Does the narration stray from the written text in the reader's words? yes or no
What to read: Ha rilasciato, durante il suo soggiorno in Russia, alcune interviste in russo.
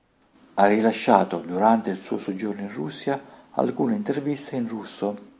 no